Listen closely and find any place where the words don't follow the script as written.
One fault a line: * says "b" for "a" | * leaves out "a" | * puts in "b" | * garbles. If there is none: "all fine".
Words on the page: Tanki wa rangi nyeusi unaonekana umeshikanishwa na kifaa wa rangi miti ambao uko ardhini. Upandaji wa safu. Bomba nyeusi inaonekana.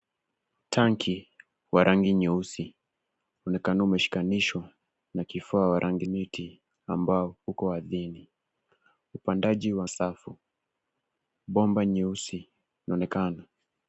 all fine